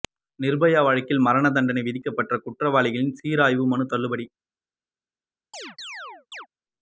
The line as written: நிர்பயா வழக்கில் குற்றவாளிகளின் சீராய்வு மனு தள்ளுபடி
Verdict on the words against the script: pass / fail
fail